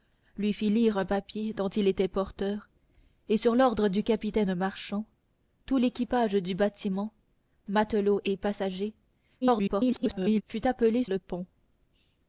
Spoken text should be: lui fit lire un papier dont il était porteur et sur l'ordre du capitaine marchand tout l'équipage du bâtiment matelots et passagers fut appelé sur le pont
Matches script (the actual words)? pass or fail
fail